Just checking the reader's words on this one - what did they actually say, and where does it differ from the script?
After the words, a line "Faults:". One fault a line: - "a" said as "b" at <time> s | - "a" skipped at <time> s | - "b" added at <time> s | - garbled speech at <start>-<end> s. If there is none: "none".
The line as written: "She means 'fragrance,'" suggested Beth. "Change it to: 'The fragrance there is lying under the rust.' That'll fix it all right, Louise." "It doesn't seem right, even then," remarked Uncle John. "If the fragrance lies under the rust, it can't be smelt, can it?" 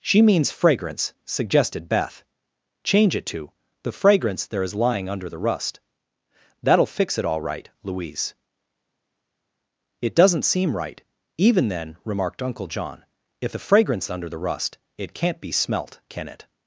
"She means 'fragrance,'" suggested Beth. "Change it to: 'The fragrance there is lying under the rust.' That'll fix it all right, Louise." "It doesn't seem right, even then," remarked Uncle John. "If the fragrance under the rust, it can't be smelt, can it?"
Faults:
- "lies" skipped at 14.1 s